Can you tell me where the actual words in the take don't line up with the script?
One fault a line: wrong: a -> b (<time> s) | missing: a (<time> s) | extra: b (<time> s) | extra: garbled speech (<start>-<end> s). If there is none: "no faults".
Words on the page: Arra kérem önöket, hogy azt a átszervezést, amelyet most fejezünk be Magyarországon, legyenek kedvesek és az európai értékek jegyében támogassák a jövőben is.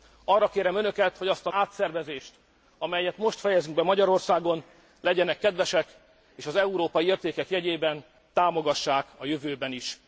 no faults